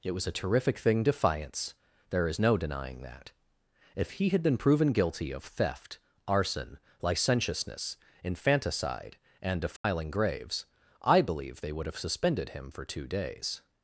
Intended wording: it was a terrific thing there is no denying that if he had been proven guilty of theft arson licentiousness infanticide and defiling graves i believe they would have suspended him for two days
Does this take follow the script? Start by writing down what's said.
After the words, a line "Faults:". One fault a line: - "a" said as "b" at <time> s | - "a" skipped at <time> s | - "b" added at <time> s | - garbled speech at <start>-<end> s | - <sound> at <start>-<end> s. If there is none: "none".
it was a terrific thing defiance there is no denying that if he had been proven guilty of theft arson licentiousness infanticide and defiling graves i believe they would have suspended him for two days
Faults:
- "defiance" added at 1.0 s
- dropout at 9.8-9.8 s